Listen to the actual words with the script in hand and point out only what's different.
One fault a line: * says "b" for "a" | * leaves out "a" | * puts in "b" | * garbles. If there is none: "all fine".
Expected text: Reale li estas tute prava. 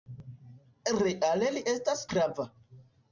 * leaves out "tute"